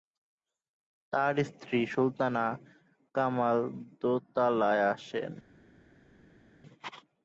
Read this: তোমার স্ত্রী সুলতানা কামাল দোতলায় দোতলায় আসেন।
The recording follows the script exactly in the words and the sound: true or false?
false